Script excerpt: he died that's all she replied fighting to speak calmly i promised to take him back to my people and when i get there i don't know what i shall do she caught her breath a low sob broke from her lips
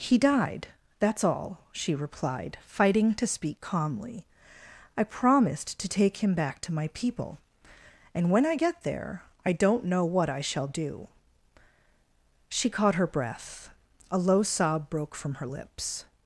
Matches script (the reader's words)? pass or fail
pass